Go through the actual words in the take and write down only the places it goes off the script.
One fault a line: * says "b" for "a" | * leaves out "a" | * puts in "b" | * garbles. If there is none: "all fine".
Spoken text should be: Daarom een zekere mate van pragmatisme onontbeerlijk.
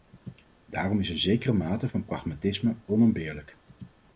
* puts in "is"